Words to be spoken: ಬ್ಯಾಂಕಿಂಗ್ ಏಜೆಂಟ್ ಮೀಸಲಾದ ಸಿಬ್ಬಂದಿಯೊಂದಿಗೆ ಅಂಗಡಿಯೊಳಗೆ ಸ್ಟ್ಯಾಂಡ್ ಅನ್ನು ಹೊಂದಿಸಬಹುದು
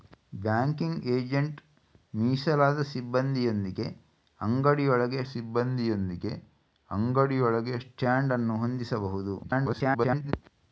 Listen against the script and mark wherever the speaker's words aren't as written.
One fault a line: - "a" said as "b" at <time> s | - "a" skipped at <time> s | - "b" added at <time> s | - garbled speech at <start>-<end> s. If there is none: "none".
- "ಸಿಬ್ಬಂದಿಯೊಂದಿಗೆ ಅಂಗಡಿಯೊಳಗೆ" added at 5.2 s
- garbled speech at 9.4-10.3 s